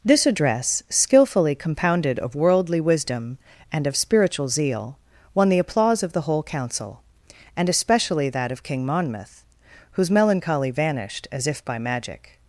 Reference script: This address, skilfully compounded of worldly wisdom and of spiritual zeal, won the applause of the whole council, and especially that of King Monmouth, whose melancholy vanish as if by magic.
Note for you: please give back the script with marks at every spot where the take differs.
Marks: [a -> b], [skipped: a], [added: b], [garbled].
This address, skilfully compounded of worldly wisdom and of spiritual zeal, won the applause of the whole council, and especially that of King Monmouth, whose melancholy [vanish -> vanished] as if by magic.